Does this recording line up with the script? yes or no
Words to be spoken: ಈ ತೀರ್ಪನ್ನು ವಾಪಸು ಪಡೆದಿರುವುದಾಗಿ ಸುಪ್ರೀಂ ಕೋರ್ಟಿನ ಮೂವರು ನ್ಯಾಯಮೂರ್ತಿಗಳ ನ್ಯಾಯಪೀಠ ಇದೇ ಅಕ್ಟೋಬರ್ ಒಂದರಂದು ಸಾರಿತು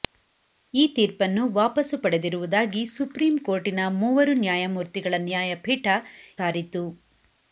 no